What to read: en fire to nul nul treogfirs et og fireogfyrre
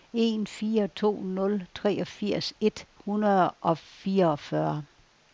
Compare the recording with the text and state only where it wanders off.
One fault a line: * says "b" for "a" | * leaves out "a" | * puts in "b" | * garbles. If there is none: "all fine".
* leaves out "nul"
* puts in "hundrede"